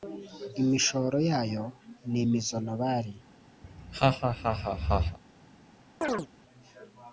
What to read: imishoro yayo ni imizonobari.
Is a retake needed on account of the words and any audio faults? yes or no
yes